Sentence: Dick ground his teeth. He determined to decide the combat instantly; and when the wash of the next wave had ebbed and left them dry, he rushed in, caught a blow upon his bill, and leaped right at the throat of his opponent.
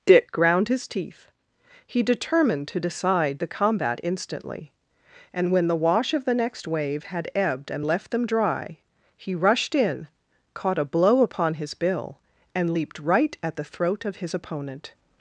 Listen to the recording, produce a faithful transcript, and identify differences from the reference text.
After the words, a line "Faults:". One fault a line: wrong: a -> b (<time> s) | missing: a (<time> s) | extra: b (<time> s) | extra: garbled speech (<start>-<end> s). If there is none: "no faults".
Dick ground his teeth. He determined to decide the combat instantly; and when the wash of the next wave had ebbed and left them dry, he rushed in, caught a blow upon his bill, and leaped right at the throat of his opponent.
Faults:
no faults